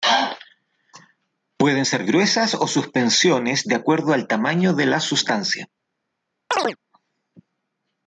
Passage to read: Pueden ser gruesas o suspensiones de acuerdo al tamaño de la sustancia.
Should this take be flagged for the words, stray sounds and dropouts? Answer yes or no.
yes